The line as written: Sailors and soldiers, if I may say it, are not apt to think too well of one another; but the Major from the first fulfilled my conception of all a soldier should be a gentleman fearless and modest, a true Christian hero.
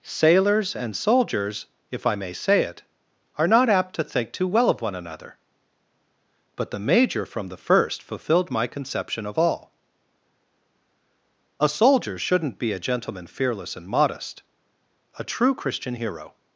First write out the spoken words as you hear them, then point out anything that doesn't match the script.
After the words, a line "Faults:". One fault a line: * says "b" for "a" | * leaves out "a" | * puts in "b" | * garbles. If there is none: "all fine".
Sailors and soldiers, if I may say it, are not apt to think too well of one another; but the Major from the first fulfilled my conception of all a soldier shouldn't be a gentleman fearless and modest, a true Christian hero.
Faults:
* says "shouldn't" for "should"